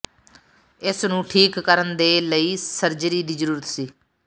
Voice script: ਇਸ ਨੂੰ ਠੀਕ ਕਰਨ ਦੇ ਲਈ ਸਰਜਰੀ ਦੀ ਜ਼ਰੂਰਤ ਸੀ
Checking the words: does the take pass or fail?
pass